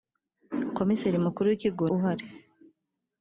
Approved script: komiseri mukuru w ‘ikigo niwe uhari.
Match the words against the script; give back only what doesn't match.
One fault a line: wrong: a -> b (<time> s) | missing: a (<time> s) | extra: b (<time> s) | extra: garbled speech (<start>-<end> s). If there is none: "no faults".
missing: niwe (1.9 s)